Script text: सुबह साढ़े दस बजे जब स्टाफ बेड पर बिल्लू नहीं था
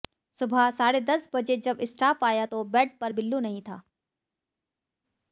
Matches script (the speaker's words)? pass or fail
fail